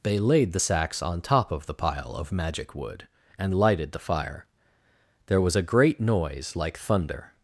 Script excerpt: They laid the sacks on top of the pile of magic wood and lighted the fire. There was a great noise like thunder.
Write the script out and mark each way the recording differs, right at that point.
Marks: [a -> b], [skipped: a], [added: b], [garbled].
They laid the sacks on top of the pile of magic wood and lighted the fire. There was a great noise like thunder.